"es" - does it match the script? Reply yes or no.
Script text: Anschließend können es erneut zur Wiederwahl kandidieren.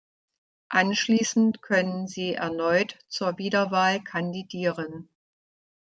no